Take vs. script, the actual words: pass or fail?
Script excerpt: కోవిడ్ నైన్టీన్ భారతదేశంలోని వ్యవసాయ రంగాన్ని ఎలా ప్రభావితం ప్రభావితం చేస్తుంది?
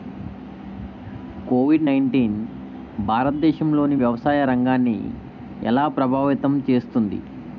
fail